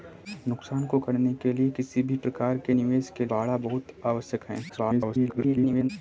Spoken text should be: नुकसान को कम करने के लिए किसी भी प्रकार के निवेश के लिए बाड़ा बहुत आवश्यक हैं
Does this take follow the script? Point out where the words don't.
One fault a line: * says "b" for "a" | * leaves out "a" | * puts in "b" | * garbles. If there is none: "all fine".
* leaves out "कम"
* leaves out "लिए"
* garbles